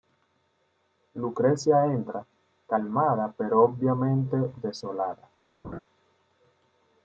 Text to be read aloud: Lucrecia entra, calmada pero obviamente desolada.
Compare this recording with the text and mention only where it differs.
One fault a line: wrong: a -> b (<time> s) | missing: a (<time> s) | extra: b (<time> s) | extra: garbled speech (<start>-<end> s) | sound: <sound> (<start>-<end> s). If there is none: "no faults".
sound: laugh (5.6-5.8 s)